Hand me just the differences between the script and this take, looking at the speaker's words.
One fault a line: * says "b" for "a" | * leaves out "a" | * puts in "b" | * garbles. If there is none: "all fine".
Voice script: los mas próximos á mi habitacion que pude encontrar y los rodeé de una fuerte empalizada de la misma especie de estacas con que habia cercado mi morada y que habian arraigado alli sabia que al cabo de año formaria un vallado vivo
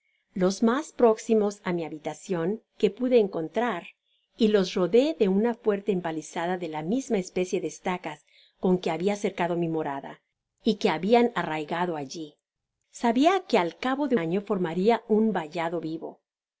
all fine